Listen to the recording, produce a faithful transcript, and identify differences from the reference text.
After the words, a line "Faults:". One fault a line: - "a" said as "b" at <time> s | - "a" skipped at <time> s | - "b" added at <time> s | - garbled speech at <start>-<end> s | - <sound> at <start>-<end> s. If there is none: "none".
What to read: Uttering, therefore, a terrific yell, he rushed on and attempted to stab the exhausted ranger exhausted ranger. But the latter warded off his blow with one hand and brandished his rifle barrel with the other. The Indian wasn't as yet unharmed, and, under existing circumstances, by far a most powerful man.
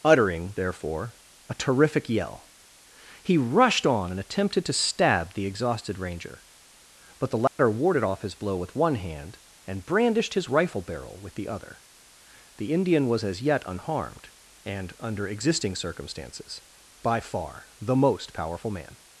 Uttering, therefore, a terrific yell, he rushed on and attempted to stab the exhausted ranger. But the latter warded off his blow with one hand and brandished his rifle barrel with the other. The Indian was as yet unharmed, and, under existing circumstances, by far the most powerful man.
Faults:
- "exhausted ranger" skipped at 6.4 s
- dropout at 7.5-7.6 s
- "wasn't" said as "was" at 13.1 s
- "a" said as "the" at 17.8 s